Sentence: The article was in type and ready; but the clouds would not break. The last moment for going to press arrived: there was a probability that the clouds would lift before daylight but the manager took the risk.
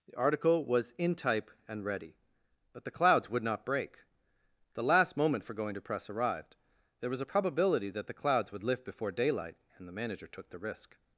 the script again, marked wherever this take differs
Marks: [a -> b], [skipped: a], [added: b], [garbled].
The article was in type and ready; but the clouds would not break. The last moment for going to press arrived: there was a probability that the clouds would lift before daylight [but -> and] the manager took the risk.